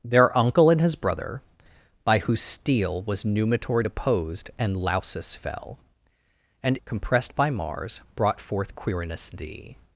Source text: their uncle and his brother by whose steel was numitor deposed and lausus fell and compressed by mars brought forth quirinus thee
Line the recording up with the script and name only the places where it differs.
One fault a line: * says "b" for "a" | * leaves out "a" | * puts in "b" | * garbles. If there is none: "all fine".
all fine